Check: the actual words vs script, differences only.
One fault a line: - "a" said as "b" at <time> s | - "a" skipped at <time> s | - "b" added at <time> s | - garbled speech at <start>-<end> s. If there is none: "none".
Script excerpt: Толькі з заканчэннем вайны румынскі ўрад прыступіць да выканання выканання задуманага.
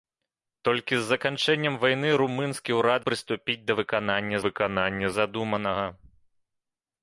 none